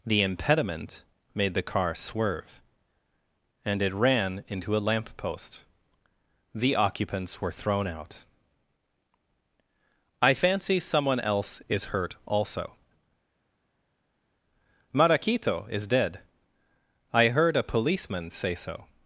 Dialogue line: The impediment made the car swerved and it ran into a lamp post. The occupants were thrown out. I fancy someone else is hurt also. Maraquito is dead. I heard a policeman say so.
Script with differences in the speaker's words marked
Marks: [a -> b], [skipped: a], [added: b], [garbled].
The impediment made the car [swerved -> swerve] and it ran into a lamp post. The occupants were thrown out. I fancy someone else is hurt also. Maraquito is dead. I heard a policeman say so.